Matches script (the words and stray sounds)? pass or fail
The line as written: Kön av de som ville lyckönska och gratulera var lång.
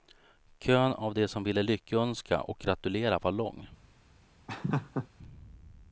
fail